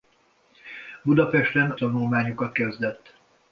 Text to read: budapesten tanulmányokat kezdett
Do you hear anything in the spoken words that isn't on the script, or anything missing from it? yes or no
no